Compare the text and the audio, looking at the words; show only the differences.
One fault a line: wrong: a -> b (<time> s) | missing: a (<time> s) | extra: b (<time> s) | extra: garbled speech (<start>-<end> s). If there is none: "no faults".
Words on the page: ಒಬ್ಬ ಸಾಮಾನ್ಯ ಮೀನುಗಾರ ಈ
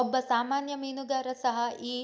extra: ಸಹ (1.4 s)